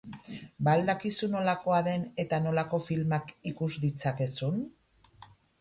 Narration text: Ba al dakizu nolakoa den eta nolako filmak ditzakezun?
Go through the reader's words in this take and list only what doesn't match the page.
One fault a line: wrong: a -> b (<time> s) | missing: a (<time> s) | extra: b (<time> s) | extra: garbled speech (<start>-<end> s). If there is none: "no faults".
extra: ikus (3.5 s)